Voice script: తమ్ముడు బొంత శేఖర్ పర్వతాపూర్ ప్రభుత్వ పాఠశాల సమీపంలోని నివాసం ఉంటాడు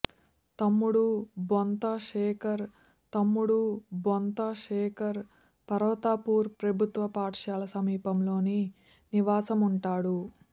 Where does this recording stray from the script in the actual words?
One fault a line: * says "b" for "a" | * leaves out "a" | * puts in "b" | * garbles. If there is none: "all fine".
* puts in "తమ్ముడు బొంత శేఖర్"